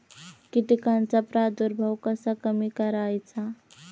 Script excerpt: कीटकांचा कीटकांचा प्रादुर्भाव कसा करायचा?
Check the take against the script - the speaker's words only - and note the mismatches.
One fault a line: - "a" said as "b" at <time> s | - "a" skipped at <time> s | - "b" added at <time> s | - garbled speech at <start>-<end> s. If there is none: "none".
- "कीटकांचा" skipped at 1.2 s
- "कमी" added at 2.4 s